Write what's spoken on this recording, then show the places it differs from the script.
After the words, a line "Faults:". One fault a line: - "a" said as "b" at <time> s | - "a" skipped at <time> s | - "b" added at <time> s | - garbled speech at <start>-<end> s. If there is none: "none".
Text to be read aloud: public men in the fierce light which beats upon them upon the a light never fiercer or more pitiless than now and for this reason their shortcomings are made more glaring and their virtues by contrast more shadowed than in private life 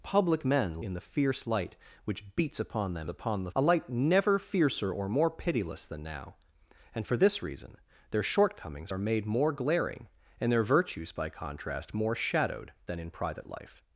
public men in the fierce light which beats upon them upon the a light never fiercer or more pitiless than now and for this reason their shortcomings are made more glaring and their virtues by contrast more shadowed than in private life
Faults:
none